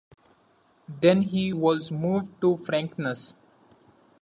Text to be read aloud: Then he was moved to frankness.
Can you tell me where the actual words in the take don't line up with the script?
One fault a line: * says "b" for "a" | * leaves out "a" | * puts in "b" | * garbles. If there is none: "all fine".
all fine